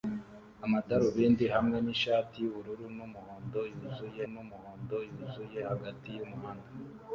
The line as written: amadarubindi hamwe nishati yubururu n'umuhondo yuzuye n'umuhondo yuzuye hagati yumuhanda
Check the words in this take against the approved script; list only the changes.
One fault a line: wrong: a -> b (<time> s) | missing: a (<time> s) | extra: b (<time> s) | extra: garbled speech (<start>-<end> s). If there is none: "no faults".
no faults